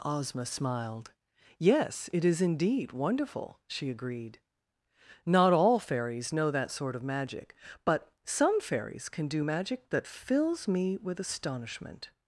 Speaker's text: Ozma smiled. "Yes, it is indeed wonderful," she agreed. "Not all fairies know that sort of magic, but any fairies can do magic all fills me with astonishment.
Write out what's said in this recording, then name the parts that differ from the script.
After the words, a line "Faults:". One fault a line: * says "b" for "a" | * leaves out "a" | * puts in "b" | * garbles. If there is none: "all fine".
Ozma smiled. "Yes, it is indeed wonderful," she agreed. "Not all fairies know that sort of magic, but some fairies can do magic that fills me with astonishment.
Faults:
* says "some" for "any"
* says "that" for "all"